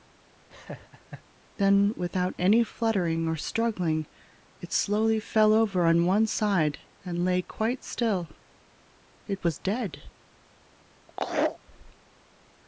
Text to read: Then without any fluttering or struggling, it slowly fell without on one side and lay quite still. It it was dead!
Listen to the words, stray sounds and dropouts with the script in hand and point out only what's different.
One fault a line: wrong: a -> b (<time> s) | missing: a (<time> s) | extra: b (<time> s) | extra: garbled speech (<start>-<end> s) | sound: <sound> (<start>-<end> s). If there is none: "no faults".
sound: laugh (0.5-1.2 s)
wrong: without -> over (5.5 s)
missing: it (9.4 s)
sound: laugh (11.1-11.6 s)